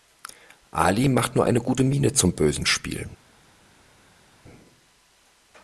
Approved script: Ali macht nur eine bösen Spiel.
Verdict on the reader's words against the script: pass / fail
fail